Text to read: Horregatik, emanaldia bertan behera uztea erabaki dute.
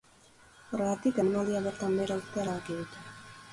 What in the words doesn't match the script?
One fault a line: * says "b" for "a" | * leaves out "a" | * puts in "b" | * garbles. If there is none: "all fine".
all fine